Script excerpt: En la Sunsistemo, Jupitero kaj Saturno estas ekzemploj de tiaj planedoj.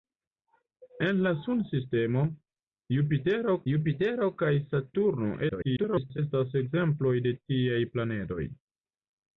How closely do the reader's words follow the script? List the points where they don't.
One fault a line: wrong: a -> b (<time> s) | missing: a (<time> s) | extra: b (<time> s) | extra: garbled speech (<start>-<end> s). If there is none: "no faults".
extra: Jupitero (3.7 s)
extra: garbled speech (5.5-6.2 s)